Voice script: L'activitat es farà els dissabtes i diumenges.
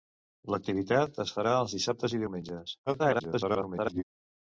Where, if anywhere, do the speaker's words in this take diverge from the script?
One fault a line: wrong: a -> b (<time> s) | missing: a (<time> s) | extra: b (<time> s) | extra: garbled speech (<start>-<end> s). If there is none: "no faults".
extra: garbled speech (2.9-4.0 s)